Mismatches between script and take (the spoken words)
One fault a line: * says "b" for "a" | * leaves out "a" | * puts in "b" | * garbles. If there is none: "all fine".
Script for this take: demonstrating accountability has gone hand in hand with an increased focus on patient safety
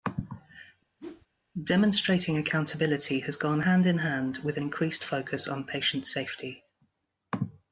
all fine